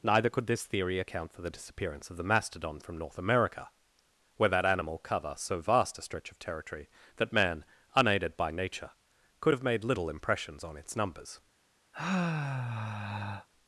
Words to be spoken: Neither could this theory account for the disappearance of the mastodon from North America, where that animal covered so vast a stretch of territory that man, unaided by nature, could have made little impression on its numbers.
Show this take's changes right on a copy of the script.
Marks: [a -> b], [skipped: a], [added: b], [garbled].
Neither could this theory account for the disappearance of the mastodon from North America, where that animal [covered -> cover] so vast a stretch of territory that man, unaided by nature, could have made little [impression -> impressions] on its numbers.